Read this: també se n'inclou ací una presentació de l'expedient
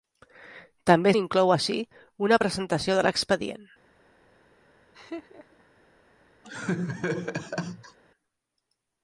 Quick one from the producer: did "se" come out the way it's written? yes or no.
no